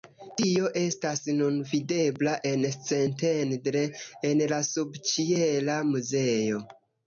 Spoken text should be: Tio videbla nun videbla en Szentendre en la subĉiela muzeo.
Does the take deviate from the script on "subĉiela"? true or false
false